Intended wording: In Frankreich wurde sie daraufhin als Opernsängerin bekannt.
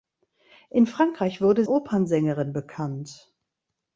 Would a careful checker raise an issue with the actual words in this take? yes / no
yes